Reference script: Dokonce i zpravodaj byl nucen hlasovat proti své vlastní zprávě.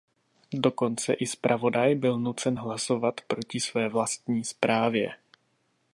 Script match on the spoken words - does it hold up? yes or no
yes